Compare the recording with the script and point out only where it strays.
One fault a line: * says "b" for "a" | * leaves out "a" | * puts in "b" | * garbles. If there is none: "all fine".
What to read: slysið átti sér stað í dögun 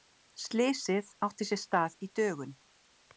all fine